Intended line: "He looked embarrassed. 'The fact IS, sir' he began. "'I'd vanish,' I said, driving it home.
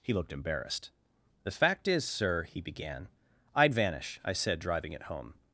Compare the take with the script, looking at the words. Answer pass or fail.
pass